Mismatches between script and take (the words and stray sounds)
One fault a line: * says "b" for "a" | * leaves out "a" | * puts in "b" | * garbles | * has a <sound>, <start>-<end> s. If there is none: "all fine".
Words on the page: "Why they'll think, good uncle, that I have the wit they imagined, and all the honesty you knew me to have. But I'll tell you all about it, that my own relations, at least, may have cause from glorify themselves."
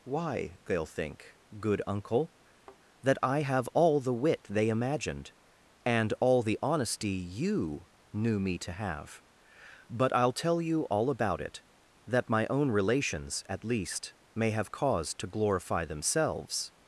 * has a thud, 2.5-2.8 s
* puts in "all"
* says "to" for "from"